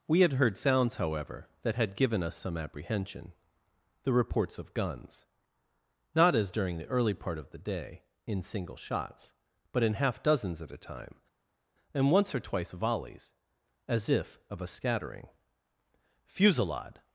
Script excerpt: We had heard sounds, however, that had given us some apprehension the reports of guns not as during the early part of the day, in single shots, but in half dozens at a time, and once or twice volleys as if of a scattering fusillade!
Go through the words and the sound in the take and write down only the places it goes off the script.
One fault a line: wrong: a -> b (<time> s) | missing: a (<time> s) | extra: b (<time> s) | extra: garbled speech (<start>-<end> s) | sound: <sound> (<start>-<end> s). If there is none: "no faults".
no faults